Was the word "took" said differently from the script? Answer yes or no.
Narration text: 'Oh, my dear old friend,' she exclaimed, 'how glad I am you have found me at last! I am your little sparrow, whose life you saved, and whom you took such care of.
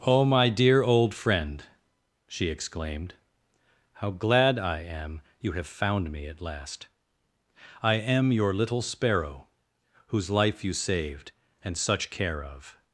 yes